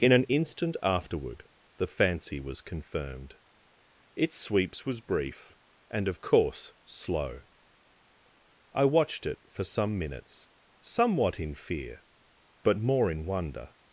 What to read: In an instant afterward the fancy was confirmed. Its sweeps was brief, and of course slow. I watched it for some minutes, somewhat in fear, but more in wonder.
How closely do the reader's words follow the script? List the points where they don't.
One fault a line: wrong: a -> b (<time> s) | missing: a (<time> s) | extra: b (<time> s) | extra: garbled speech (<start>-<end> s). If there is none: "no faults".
no faults